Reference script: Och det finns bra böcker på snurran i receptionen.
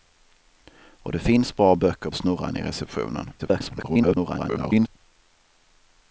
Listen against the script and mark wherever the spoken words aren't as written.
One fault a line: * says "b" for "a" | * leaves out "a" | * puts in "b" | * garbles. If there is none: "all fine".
* leaves out "på"
* garbles